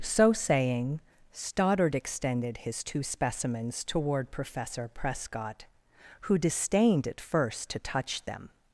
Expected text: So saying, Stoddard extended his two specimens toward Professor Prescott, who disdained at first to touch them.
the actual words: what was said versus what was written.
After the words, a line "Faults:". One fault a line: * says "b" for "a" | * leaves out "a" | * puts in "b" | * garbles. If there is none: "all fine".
So saying, Stoddard extended his two specimens toward Professor Prescott, who disdained at first to touch them.
Faults:
all fine